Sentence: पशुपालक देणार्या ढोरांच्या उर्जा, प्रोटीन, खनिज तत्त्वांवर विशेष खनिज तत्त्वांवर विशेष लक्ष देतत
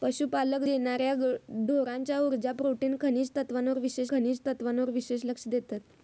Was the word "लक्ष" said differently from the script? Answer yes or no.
no